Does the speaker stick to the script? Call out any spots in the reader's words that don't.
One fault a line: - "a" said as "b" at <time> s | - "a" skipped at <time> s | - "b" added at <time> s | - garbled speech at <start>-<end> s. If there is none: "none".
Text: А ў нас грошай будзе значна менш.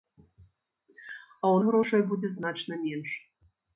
- "нас" skipped at 1.6 s